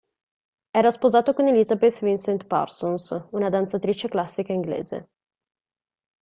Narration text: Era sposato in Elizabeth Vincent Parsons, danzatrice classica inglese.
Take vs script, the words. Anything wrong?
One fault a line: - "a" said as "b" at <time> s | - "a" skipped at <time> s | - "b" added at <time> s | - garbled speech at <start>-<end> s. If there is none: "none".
- "in" said as "con" at 1.3 s
- "una" added at 3.3 s